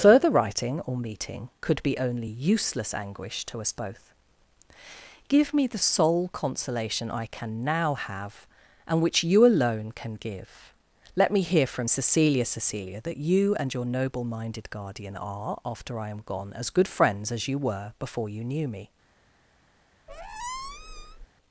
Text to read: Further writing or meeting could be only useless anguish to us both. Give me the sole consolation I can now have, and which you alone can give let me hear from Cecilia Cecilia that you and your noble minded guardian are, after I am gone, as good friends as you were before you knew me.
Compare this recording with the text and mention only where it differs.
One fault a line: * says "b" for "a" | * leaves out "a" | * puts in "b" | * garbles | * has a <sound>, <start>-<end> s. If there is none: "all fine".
* has a squeak, 20.1-21.3 s